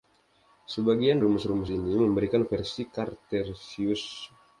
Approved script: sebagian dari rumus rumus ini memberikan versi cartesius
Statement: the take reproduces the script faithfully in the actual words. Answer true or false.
false